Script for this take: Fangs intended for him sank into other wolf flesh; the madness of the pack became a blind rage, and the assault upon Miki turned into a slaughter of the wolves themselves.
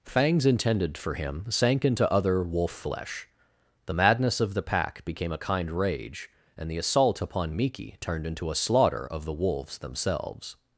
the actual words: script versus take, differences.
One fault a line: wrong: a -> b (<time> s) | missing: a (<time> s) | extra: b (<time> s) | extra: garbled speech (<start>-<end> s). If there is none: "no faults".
wrong: blind -> kind (5.4 s)